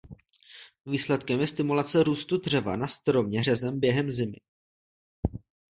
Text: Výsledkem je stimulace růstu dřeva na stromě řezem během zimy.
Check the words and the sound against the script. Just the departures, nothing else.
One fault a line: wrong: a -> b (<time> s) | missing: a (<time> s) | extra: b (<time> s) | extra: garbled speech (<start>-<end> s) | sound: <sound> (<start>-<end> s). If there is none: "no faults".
no faults